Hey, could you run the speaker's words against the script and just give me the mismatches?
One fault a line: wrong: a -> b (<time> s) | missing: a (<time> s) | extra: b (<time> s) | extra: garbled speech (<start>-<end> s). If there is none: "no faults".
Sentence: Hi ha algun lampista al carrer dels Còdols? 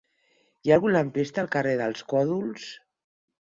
no faults